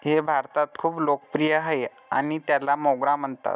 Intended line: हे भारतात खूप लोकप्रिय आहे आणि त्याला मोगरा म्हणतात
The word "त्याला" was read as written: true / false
true